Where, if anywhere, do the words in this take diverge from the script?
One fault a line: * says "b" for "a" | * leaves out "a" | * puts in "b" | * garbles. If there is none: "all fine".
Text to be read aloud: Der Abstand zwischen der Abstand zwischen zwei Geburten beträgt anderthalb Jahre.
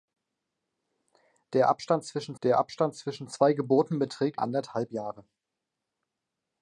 all fine